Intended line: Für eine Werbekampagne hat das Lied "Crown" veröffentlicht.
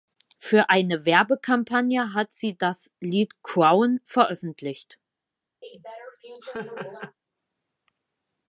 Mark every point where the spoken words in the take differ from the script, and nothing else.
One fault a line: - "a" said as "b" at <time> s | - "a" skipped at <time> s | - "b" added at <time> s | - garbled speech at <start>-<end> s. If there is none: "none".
- "sie" added at 2.3 s